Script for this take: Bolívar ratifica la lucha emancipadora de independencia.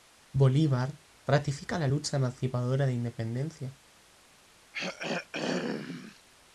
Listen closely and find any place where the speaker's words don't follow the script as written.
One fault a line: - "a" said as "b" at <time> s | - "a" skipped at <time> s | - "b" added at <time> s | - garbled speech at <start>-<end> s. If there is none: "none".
none